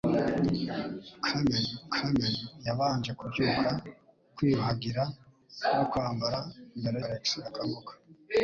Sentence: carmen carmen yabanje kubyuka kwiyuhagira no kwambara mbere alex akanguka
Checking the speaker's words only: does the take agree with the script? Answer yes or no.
yes